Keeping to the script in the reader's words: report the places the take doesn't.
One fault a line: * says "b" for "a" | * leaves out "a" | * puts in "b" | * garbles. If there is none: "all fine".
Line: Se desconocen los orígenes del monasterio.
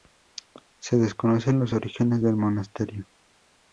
all fine